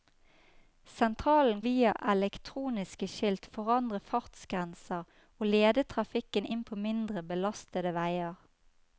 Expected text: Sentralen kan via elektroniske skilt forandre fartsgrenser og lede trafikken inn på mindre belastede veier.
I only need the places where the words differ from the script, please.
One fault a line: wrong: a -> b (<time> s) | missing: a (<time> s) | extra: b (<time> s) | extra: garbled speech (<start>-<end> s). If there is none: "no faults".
missing: kan (1.6 s)